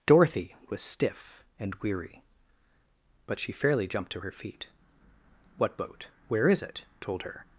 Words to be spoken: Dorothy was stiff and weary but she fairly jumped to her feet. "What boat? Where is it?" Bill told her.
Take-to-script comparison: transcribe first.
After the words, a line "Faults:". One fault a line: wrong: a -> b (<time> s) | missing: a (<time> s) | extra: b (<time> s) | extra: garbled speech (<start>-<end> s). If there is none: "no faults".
Dorothy was stiff and weary but she fairly jumped to her feet. "What boat? Where is it?" told her.
Faults:
missing: Bill (6.9 s)